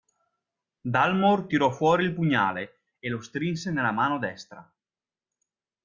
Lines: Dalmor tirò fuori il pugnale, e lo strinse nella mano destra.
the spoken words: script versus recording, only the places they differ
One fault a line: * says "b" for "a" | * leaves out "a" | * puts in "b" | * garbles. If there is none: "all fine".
all fine